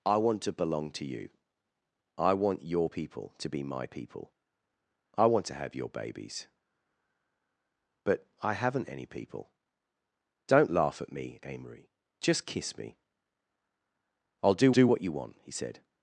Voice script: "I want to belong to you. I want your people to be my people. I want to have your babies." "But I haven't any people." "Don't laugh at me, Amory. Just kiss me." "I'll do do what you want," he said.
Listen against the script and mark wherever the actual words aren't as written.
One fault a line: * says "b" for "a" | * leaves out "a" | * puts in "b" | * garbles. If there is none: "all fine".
all fine